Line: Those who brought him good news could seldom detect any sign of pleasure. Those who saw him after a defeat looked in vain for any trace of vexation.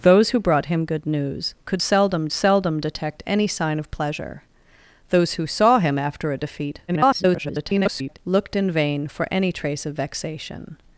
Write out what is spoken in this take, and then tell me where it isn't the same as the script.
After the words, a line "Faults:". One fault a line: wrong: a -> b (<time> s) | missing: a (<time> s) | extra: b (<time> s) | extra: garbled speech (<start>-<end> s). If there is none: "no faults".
Those who brought him good news could seldom seldom detect any sign of pleasure. Those who saw him after a defeat [garbled] looked in vain for any trace of vexation.
Faults:
extra: seldom (2.3 s)
extra: garbled speech (6.9-8.2 s)